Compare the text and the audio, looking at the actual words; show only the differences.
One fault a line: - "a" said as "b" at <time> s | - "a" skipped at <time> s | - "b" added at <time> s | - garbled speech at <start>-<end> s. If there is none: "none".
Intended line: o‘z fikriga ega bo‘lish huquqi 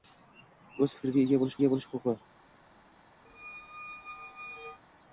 - "ega bo‘lish" added at 1.6 s